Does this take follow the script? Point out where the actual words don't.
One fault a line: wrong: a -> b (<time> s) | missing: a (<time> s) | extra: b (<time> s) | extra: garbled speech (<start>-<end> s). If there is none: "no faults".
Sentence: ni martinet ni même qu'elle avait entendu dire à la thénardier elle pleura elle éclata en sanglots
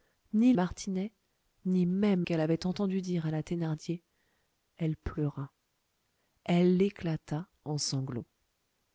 no faults